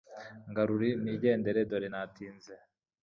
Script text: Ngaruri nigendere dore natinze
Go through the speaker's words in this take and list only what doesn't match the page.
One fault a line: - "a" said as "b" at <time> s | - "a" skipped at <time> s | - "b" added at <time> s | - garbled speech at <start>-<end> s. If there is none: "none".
none